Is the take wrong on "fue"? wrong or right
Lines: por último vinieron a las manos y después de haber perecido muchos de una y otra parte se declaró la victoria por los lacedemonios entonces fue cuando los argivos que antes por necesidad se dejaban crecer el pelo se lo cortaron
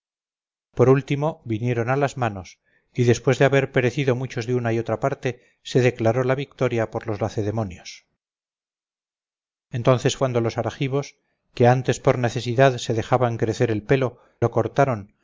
wrong